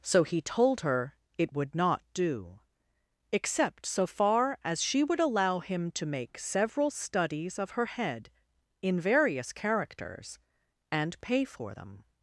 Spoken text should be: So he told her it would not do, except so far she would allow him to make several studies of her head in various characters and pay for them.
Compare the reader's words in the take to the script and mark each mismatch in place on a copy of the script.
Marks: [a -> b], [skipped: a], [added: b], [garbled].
So he told her it would not do, except so far [added: as] she would allow him to make several studies of her head in various characters and pay for them.